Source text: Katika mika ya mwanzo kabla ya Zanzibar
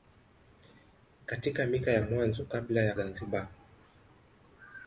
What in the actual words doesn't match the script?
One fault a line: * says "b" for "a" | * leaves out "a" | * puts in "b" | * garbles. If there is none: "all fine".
all fine